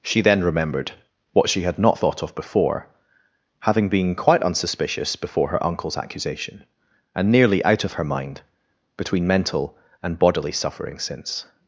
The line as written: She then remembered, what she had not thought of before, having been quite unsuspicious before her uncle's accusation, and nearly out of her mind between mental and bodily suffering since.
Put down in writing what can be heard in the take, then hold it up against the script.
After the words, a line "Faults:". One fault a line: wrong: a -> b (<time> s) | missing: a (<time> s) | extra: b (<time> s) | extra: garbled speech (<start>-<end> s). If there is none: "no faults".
She then remembered, what she had not thought of before, having been quite unsuspicious before her uncle's accusation, and nearly out of her mind between mental and bodily suffering since.
Faults:
no faults